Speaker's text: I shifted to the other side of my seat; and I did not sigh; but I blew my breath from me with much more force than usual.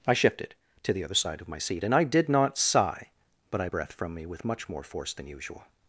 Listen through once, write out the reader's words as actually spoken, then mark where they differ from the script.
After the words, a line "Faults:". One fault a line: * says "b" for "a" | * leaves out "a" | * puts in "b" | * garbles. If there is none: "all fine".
I shifted to the other side of my seat; and I did not sigh; but I breath from me with much more force than usual.
Faults:
* leaves out "blew my"